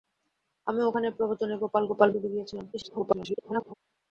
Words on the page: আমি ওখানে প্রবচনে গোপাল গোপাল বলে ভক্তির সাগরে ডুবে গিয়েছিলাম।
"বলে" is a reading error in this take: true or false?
true